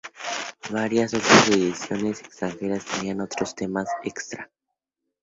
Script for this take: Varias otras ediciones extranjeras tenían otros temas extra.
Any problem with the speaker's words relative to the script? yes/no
no